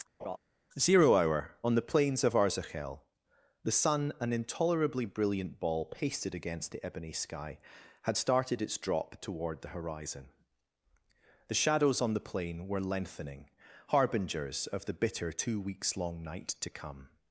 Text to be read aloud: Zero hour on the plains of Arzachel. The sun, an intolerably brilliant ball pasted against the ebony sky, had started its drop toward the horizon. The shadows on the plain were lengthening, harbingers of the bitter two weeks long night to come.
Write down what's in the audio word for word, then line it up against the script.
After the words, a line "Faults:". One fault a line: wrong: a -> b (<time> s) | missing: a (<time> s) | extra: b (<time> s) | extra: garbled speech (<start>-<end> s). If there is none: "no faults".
Zero hour on the plains of Arzachel. The sun, an intolerably brilliant ball pasted against the ebony sky, had started its drop toward the horizon. The shadows on the plain were lengthening, harbingers of the bitter two weeks long night to come.
Faults:
no faults